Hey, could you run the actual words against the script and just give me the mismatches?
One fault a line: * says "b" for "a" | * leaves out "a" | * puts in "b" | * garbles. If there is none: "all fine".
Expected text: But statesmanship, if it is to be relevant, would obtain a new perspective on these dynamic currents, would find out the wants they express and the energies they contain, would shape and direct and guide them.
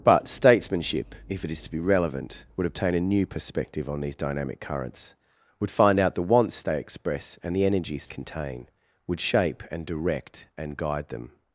* leaves out "they"